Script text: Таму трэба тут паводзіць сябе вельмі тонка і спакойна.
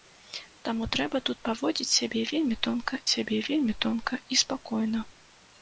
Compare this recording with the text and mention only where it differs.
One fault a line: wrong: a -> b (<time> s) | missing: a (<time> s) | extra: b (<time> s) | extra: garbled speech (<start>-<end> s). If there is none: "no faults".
extra: сябе вельмі тонка (3.1 s)